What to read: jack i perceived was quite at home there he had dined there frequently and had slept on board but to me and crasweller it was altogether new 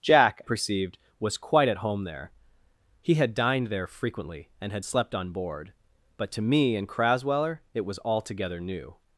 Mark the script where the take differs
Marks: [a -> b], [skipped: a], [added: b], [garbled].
jack [skipped: i] perceived was quite at home there he had dined there frequently and had slept on board but to me and crasweller it was altogether new